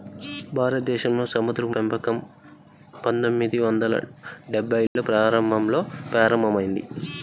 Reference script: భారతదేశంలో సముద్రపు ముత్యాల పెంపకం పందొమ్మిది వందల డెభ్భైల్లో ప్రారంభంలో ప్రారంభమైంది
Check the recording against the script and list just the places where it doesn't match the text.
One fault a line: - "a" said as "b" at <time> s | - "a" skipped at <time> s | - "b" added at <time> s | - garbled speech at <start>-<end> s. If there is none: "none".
- "ముత్యాల" skipped at 1.8 s